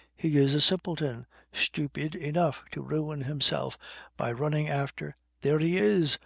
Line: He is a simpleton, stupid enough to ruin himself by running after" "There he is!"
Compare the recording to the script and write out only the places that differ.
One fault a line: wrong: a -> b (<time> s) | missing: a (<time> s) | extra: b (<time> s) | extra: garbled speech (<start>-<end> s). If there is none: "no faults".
no faults